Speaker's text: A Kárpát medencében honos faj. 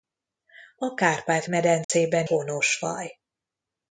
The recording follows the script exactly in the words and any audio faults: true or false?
false